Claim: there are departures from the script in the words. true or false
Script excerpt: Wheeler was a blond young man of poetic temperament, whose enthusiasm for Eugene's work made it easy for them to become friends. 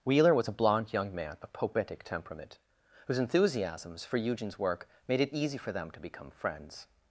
true